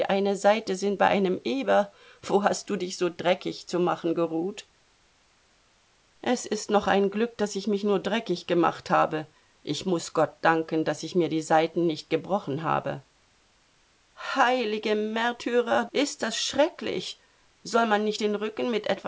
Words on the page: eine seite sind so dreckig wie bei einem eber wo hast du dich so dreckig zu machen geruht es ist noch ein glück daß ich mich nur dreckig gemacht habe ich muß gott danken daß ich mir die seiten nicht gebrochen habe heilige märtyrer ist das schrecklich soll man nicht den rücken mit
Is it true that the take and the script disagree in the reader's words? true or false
true